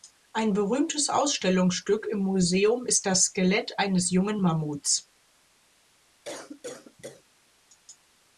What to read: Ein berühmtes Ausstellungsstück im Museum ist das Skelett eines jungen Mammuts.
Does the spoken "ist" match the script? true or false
true